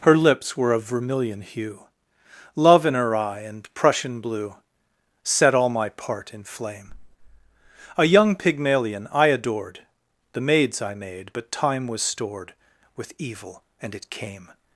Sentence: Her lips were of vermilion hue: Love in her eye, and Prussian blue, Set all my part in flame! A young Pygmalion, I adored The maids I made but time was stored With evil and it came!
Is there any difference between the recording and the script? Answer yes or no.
no